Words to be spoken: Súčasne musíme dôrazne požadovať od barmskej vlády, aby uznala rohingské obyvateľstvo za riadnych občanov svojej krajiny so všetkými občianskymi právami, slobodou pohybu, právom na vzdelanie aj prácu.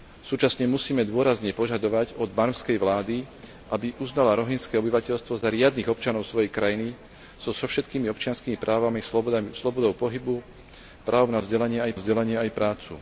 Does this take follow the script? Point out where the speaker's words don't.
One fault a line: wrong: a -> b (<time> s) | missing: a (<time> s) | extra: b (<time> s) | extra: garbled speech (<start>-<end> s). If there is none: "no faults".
extra: vzdelanie aj (12.0 s)